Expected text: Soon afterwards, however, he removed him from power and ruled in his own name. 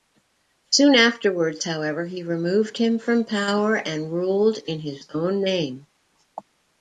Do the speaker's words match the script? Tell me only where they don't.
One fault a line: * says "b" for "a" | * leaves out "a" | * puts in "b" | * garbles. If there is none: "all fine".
all fine